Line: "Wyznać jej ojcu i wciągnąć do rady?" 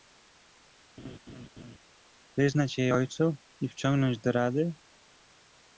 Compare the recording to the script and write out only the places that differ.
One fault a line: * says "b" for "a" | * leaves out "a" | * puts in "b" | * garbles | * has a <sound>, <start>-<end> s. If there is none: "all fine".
* has a laugh, 1.0-1.8 s